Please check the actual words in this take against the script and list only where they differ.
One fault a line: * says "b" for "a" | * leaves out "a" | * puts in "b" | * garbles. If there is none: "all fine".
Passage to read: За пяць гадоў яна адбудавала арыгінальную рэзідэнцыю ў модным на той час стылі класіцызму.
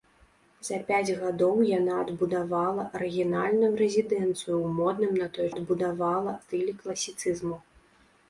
* says "адбудавала" for "час"